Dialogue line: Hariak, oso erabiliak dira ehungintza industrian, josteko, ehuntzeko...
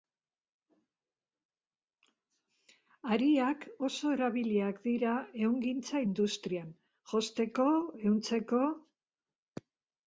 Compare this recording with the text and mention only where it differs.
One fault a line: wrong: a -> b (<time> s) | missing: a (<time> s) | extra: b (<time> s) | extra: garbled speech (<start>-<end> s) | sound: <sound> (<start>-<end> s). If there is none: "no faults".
no faults